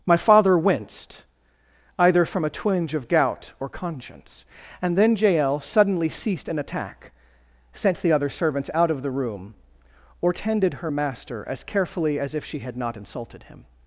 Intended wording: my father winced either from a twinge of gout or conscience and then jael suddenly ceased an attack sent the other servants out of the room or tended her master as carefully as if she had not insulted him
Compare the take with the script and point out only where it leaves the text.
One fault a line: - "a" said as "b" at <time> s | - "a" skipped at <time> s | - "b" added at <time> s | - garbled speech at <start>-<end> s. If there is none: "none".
none